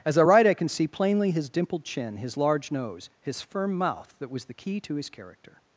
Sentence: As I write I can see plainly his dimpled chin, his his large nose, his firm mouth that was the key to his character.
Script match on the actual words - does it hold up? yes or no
no